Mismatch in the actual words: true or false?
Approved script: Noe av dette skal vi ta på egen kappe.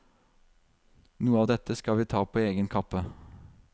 false